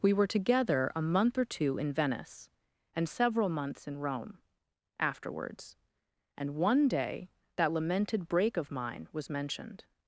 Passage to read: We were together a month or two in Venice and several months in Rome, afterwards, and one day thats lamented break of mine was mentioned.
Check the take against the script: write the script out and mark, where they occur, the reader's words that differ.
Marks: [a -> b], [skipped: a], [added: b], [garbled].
We were together a month or two in Venice and several months in Rome, afterwards, and one day [thats -> that] lamented break of mine was mentioned.